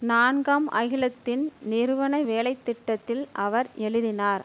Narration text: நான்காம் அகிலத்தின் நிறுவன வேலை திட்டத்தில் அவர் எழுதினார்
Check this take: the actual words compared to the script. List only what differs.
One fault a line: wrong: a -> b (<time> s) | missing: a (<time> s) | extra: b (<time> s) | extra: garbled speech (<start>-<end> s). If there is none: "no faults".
no faults